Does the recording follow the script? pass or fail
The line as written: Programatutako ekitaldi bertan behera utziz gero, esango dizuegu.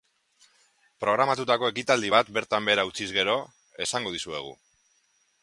fail